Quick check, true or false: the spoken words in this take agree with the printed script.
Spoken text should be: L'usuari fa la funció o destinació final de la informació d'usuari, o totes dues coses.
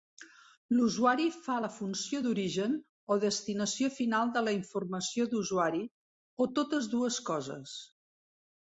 false